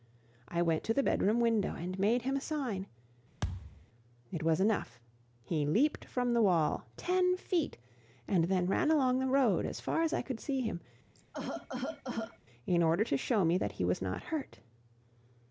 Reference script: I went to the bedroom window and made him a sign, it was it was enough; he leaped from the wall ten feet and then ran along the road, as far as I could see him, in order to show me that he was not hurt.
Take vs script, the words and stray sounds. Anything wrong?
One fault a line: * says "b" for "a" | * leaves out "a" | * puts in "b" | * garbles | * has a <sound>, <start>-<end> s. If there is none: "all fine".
* has a thud, 3.4-3.9 s
* leaves out "it was"
* has a cough, 11.1-12.4 s